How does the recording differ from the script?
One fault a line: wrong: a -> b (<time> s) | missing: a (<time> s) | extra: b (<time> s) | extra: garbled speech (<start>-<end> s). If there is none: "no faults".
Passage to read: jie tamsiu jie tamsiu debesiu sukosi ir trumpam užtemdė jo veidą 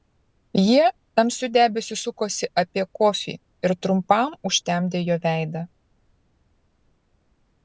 wrong: jie tamsiu debesiu sukosi -> debesiu sukosi apie kofį (1.6 s)